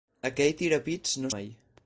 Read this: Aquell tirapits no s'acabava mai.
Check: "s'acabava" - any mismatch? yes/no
yes